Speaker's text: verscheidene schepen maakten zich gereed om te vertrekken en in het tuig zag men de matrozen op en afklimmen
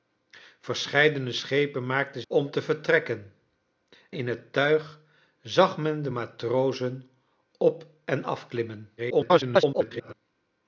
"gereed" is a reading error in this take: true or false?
true